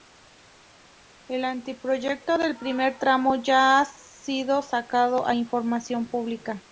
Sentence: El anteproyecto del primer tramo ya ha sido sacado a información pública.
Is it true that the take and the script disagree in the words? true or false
false